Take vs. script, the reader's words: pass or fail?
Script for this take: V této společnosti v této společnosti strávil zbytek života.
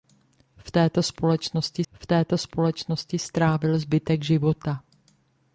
pass